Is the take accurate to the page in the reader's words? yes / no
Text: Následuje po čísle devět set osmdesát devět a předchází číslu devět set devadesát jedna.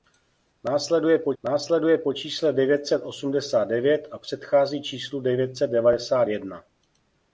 no